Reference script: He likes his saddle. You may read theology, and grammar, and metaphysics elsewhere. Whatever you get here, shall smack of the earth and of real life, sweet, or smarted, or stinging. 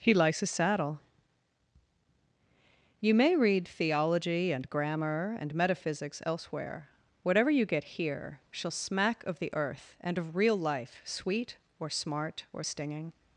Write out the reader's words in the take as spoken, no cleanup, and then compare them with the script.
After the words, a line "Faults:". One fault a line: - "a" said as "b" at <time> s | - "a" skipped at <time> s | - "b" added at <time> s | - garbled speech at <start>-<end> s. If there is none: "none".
He likes his saddle. You may read theology, and grammar, and metaphysics elsewhere. Whatever you get here, shall smack of the earth and of real life, sweet, or smart, or stinging.
Faults:
- "smarted" said as "smart" at 11.9 s